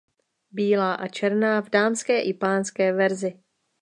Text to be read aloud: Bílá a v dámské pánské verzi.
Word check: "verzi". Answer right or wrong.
right